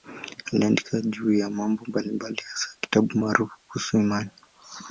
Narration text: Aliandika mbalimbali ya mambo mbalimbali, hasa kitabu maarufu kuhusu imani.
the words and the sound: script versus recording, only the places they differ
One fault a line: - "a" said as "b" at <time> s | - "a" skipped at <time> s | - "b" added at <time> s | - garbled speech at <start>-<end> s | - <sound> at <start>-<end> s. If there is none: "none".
- "mbalimbali" said as "juu" at 1.0 s